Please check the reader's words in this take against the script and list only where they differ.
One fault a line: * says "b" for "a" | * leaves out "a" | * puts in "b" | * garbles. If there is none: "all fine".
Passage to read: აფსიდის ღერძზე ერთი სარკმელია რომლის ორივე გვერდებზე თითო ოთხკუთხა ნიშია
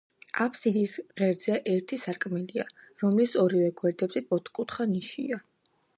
* leaves out "თითო"